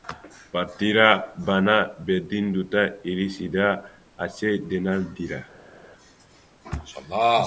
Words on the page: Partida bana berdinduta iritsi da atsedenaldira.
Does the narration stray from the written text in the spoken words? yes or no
no